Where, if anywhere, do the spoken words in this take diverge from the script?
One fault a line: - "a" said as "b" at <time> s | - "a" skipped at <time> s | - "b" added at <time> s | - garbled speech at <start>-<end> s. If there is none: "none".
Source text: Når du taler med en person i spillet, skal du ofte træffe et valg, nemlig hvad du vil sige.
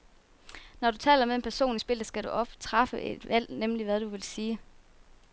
none